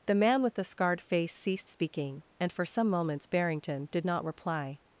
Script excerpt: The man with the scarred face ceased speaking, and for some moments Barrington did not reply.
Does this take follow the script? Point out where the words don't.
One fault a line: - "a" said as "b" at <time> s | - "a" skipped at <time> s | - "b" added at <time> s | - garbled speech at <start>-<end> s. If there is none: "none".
none